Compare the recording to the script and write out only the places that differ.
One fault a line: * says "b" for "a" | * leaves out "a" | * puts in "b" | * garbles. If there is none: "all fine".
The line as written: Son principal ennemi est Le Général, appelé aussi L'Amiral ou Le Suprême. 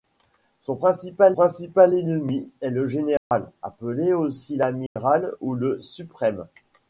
* puts in "principal"